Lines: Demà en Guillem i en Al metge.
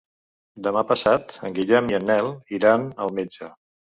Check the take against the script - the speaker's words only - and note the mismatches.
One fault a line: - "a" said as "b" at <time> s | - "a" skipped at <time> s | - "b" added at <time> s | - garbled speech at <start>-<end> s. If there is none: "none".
- "passat" added at 0.9 s
- "Nel iran" added at 2.1 s